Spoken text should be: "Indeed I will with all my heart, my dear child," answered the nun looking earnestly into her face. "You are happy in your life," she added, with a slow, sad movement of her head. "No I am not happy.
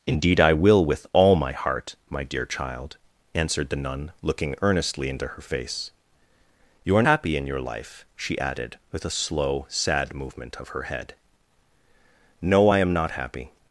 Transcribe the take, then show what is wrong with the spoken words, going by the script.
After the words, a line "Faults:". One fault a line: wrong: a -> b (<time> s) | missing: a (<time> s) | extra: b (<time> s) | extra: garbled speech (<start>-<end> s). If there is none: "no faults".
"Indeed I will with all my heart, my dear child," answered the nun looking earnestly into her face. "You are happy in your life," she added, with a slow, sad movement of her head. "No I am not happy.
Faults:
no faults